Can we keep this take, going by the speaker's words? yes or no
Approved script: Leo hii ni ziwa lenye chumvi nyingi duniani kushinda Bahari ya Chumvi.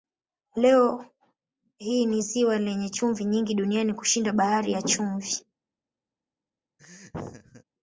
yes